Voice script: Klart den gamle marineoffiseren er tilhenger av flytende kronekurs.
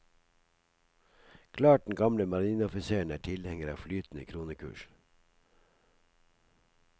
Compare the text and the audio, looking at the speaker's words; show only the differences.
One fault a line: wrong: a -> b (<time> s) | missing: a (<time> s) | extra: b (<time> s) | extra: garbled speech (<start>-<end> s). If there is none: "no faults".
no faults